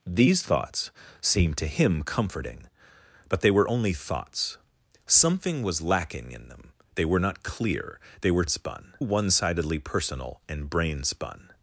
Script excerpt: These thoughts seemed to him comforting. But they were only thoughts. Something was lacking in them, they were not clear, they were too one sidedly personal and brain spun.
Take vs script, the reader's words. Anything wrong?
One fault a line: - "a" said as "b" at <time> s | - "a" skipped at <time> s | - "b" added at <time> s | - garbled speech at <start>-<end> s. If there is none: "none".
- "too" said as "spun" at 8.5 s